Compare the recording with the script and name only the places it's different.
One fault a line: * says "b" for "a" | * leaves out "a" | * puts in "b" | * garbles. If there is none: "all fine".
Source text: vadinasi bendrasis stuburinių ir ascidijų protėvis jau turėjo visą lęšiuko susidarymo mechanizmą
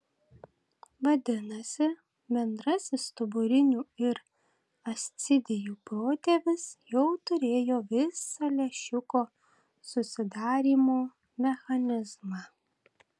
all fine